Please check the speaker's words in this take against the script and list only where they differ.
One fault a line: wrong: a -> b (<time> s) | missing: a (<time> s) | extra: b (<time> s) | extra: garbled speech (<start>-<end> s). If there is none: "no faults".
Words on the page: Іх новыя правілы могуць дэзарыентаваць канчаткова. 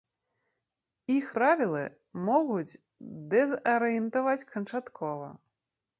missing: новыя (1.3 s)